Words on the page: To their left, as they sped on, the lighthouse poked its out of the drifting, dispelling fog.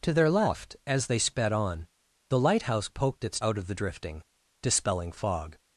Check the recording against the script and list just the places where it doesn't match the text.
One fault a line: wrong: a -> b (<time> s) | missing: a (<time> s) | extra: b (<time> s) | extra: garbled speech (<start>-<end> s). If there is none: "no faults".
no faults